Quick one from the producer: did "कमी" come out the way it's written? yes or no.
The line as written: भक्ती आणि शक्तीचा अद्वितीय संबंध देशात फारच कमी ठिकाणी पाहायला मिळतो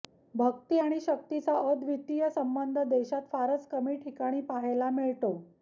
yes